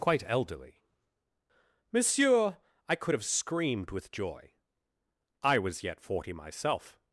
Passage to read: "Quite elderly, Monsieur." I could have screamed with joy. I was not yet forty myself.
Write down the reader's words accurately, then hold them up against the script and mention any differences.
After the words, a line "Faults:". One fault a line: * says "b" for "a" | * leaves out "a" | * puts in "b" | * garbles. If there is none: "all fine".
"Quite elderly, Monsieur." I could have screamed with joy. I was yet forty myself.
Faults:
* leaves out "not"